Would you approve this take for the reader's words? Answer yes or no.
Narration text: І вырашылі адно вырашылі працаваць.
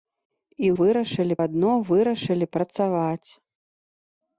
yes